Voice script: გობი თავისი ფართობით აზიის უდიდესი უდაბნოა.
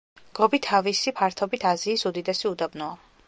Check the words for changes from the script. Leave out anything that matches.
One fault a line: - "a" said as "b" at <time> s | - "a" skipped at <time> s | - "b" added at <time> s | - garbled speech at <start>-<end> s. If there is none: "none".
none